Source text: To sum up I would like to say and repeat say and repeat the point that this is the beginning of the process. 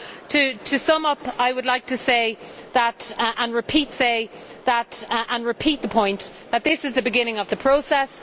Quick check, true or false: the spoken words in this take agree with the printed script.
true